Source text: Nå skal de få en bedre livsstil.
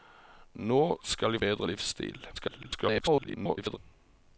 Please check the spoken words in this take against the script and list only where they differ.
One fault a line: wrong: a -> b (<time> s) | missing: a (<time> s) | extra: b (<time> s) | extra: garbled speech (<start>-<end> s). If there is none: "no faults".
missing: få en (1.4 s)
extra: garbled speech (2.3-3.8 s)